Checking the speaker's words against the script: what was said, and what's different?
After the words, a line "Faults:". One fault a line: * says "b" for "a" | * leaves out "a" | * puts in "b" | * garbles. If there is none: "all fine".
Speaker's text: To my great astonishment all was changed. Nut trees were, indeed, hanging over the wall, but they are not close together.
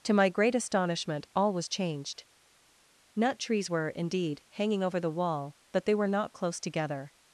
To my great astonishment all was changed. Nut trees were, indeed, hanging over the wall, but they were not close together.
Faults:
* says "were" for "are"